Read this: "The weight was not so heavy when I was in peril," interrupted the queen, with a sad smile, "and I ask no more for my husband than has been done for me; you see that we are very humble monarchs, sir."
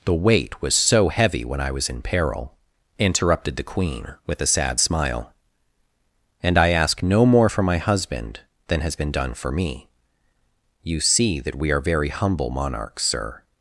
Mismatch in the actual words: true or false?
true